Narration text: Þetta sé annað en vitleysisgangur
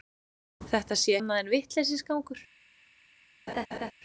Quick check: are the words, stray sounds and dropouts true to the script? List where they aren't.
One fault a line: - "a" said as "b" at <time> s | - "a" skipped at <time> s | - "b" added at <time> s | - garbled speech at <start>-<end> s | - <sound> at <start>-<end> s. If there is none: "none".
- laugh at 3.5-3.9 s